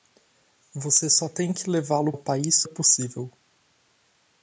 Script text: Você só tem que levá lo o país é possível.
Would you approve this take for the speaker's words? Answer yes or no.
yes